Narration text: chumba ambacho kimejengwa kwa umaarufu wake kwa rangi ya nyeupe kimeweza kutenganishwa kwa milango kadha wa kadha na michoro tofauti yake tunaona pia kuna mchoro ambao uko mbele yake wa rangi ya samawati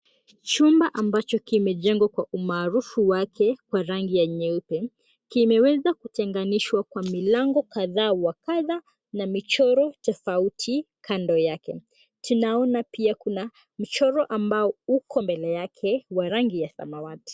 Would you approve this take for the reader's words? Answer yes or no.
no